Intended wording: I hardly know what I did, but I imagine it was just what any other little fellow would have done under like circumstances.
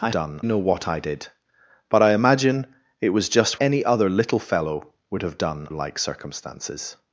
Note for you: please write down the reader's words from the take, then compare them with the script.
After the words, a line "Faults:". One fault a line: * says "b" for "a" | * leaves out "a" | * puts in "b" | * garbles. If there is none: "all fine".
I done know what I did, but I imagine it was just any other little fellow would have done like circumstances.
Faults:
* says "done" for "hardly"
* leaves out "what"
* leaves out "under"